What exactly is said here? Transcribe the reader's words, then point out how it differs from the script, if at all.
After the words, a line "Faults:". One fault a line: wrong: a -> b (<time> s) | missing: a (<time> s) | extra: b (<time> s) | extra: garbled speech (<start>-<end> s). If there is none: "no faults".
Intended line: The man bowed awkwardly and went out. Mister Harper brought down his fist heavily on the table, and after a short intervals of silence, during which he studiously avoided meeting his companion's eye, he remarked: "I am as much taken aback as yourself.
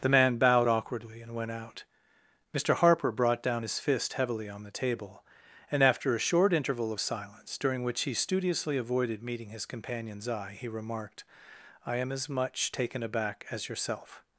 The man bowed awkwardly and went out. Mister Harper brought down his fist heavily on the table, and after a short interval of silence, during which he studiously avoided meeting his companion's eye, he remarked: "I am as much taken aback as yourself.
Faults:
wrong: intervals -> interval (6.5 s)